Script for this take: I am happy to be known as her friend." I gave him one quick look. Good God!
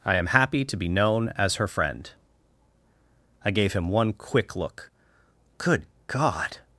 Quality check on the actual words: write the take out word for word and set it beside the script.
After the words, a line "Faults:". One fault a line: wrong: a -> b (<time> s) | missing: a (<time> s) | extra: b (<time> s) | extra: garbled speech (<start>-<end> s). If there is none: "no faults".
I am happy to be known as her friend." I gave him one quick look. Good God!
Faults:
no faults